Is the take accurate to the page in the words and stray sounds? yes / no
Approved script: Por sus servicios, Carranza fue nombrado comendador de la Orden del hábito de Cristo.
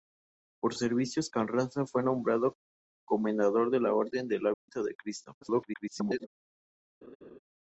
no